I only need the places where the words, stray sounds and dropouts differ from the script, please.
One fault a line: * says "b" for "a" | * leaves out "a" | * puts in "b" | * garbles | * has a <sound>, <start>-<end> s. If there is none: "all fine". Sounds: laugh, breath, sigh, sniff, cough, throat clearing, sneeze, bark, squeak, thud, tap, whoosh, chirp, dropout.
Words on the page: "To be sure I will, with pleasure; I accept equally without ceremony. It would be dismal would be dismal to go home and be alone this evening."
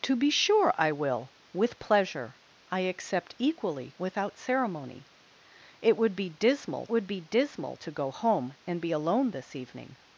all fine